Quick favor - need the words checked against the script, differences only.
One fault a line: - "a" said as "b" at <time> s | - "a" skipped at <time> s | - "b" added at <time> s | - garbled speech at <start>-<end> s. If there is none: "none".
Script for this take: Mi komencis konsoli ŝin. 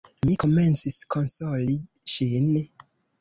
none